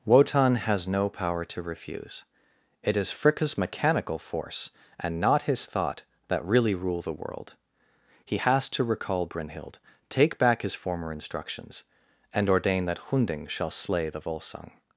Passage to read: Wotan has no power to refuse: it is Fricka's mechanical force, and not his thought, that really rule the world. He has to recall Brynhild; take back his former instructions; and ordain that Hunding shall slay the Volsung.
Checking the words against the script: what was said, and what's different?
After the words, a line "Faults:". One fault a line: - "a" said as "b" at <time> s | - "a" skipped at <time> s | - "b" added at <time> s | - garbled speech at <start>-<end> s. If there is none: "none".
Wotan has no power to refuse: it is Fricka's mechanical force, and not his thought, that really rule the world. He has to recall Brynhild; take back his former instructions; and ordain that Hunding shall slay the Volsung.
Faults:
none